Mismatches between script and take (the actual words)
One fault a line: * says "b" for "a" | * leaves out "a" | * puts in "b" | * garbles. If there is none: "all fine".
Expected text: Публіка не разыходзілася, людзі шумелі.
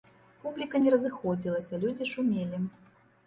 all fine